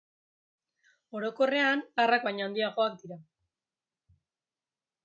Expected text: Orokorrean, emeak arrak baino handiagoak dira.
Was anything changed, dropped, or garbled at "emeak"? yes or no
yes